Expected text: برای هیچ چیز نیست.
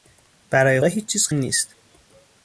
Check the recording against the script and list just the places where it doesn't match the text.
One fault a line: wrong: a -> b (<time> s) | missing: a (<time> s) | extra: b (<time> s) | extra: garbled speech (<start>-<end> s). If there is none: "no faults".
no faults